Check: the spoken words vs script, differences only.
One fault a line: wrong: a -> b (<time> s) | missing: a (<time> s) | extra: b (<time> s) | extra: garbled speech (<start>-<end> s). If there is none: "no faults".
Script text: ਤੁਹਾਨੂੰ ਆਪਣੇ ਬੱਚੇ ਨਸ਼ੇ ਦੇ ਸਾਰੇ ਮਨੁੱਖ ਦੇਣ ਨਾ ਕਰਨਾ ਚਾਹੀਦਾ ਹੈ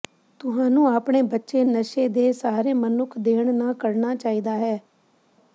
no faults